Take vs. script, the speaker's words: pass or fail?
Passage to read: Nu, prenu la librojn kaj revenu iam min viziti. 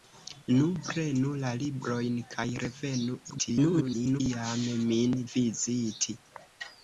fail